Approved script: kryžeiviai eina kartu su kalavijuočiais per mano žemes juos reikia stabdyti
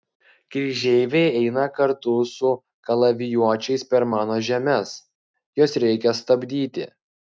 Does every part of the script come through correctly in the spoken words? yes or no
yes